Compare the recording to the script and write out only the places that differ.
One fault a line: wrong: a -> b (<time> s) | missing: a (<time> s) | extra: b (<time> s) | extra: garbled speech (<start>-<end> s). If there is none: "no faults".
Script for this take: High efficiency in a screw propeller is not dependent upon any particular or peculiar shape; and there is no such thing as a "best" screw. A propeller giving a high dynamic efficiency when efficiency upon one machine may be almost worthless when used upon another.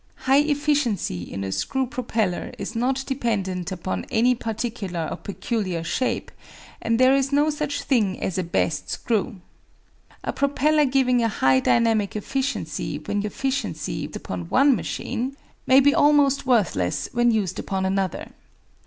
no faults